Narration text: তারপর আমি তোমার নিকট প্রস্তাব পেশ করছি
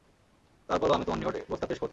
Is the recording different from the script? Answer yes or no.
no